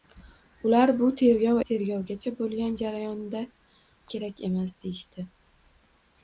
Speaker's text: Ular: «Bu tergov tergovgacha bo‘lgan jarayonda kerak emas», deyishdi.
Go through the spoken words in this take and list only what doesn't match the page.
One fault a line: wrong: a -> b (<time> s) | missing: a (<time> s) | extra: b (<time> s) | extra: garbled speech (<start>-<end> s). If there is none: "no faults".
no faults